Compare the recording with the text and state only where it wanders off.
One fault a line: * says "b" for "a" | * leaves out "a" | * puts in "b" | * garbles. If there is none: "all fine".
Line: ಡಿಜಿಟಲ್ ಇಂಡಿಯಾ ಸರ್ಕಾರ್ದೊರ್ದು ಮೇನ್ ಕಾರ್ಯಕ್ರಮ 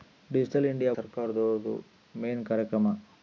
all fine